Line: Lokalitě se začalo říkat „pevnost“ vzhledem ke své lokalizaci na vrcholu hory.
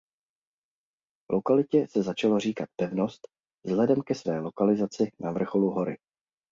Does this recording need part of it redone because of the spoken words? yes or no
no